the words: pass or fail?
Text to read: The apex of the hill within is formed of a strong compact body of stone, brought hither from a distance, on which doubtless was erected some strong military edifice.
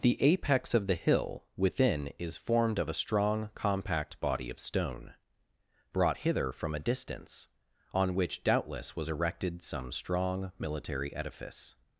pass